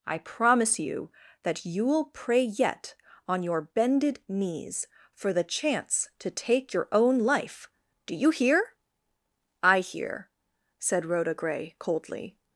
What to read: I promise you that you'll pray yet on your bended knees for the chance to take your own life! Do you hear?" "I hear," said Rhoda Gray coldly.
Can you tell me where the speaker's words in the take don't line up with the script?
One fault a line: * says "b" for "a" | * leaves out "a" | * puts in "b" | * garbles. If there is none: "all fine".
all fine